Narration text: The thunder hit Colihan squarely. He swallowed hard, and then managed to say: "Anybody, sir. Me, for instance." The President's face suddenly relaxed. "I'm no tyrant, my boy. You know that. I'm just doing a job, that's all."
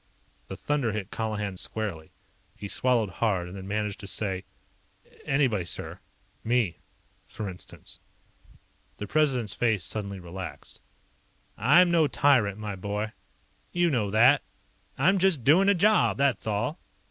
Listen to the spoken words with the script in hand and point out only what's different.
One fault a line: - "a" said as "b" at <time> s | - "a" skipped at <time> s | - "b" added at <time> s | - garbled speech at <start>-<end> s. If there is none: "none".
none